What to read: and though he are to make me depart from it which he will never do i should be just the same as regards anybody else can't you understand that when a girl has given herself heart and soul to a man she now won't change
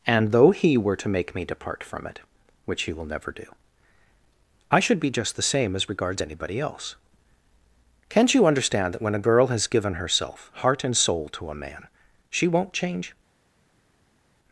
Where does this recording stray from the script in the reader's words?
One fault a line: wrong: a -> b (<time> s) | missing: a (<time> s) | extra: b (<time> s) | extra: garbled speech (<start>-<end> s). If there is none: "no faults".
wrong: are -> were (0.8 s)
missing: now (12.5 s)